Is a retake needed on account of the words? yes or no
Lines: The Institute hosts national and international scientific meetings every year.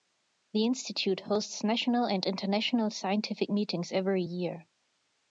no